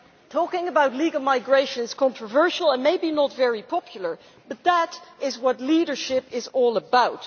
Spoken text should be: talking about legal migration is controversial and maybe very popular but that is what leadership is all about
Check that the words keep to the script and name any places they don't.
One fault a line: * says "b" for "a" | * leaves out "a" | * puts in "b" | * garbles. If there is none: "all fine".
* puts in "not"